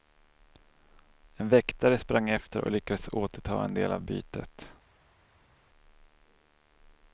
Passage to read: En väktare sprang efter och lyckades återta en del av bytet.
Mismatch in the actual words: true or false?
false